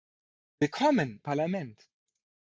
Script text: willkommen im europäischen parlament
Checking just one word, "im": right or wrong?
wrong